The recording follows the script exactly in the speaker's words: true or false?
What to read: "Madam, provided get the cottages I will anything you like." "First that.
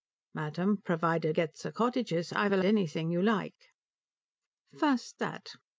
true